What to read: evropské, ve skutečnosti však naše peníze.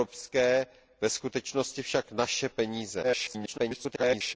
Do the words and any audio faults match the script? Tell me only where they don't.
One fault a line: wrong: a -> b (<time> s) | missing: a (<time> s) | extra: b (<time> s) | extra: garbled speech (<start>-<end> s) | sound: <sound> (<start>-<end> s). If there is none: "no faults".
extra: garbled speech (3.0-4.4 s)